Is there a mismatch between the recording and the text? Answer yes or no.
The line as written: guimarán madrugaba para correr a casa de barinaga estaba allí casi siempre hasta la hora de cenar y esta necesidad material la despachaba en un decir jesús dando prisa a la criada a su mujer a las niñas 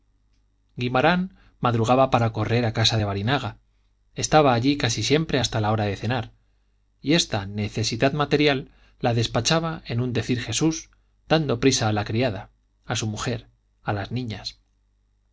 no